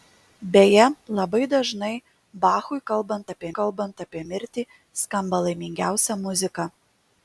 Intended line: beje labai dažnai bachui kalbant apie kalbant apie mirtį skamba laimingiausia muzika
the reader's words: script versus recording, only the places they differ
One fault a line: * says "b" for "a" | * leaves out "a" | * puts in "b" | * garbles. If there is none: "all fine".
all fine